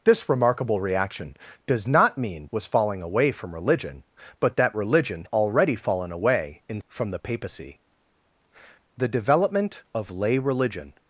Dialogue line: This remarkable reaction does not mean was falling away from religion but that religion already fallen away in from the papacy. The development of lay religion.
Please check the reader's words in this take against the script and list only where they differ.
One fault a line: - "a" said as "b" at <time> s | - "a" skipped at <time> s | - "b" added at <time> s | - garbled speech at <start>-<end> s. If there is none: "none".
none